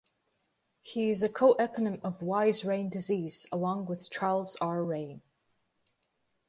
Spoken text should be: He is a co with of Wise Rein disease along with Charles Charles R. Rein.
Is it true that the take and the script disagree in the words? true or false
true